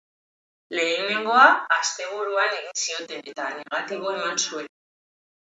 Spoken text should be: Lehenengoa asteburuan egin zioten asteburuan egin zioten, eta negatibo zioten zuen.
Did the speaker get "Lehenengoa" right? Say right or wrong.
right